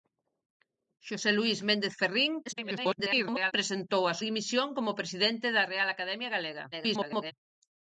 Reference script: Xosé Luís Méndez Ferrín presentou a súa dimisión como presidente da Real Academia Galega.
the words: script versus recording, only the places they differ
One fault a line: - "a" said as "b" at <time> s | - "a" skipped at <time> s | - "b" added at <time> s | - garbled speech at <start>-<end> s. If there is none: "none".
- garbled speech at 2.5-3.5 s
- "súa" skipped at 4.2 s
- garbled speech at 6.7-7.3 s